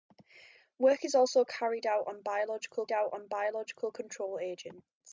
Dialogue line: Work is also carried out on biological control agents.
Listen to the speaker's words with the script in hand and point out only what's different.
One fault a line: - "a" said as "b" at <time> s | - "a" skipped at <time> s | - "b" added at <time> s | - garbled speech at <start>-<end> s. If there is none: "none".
- "out on biological" added at 2.9 s